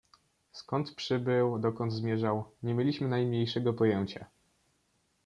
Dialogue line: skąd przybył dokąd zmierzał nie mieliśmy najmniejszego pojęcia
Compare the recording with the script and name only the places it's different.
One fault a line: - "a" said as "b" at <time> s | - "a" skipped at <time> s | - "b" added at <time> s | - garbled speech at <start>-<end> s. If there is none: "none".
none